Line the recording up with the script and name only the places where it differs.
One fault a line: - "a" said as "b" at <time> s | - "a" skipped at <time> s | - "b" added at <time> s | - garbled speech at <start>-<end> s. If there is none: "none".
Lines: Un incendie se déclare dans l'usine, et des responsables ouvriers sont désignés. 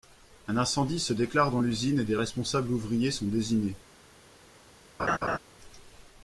none